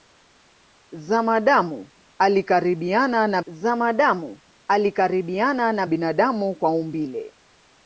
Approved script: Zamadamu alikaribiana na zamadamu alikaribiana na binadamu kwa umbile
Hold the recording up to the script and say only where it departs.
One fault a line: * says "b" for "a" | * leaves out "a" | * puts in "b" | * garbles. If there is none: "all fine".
all fine